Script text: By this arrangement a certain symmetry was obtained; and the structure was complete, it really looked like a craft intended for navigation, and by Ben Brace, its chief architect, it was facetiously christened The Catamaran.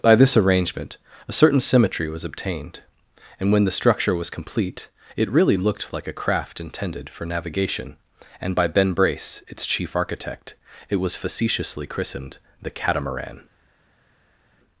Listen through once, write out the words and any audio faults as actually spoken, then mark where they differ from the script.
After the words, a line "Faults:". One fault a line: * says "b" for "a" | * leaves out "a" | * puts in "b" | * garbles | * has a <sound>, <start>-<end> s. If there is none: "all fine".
By this arrangement a certain symmetry was obtained; and when the structure was complete, it really looked like a craft intended for navigation, and by Ben Brace, its chief architect, it was facetiously christened The Catamaran.
Faults:
* puts in "when"